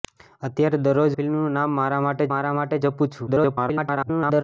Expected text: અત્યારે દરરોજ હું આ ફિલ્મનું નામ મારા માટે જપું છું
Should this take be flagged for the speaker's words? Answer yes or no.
yes